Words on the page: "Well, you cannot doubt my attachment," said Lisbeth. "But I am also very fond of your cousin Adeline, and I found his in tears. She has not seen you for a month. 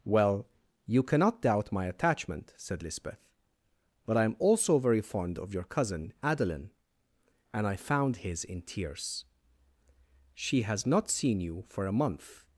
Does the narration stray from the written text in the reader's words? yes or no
no